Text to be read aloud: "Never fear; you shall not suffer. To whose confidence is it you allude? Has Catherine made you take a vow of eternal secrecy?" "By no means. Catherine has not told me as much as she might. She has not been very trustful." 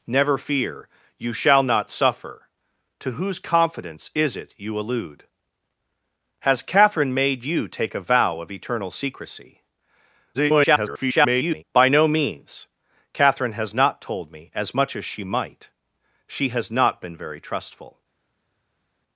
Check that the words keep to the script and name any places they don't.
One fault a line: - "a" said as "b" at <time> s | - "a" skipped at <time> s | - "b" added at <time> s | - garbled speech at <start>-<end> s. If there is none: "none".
- garbled speech at 10.3-11.6 s